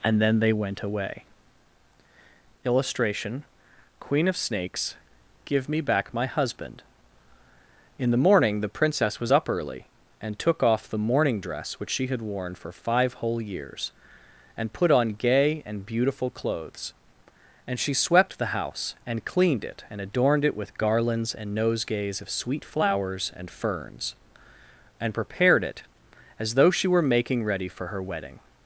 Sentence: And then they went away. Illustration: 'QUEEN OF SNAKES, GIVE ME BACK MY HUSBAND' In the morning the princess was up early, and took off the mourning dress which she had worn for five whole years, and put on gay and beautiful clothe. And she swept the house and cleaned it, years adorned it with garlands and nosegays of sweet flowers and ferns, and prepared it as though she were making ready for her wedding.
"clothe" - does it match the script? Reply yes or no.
no